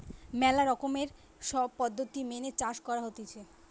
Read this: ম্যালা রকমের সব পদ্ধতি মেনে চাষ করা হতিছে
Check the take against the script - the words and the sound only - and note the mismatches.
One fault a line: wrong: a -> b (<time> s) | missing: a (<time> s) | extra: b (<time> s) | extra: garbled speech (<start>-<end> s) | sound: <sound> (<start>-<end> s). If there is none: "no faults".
no faults